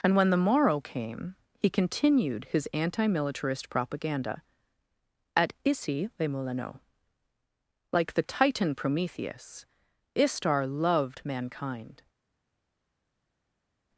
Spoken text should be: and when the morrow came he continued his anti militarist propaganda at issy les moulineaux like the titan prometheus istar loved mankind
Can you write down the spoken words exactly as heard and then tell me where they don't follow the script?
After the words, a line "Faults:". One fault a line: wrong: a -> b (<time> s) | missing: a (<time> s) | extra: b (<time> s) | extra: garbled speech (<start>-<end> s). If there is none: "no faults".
and when the morrow came he continued his anti militarist propaganda at issy les moulineaux like the titan prometheus istar loved mankind
Faults:
no faults